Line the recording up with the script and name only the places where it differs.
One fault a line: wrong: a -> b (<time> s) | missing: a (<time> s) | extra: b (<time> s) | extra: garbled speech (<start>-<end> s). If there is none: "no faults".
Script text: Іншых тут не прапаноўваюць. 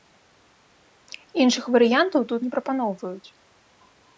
extra: варыянтаў (1.8 s)